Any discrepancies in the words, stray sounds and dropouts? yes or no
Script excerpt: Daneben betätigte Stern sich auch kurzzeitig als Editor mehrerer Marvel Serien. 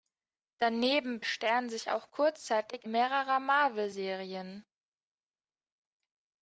yes